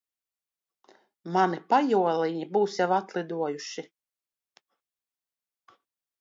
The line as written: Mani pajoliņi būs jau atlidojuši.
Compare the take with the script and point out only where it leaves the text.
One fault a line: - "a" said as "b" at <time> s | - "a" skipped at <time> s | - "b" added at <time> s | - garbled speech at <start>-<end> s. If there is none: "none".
none